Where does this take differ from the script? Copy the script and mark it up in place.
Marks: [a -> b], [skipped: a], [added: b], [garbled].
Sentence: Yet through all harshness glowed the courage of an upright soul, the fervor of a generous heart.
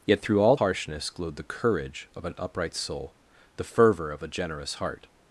Yet through all harshness glowed the courage of an upright soul, the fervor of a generous heart.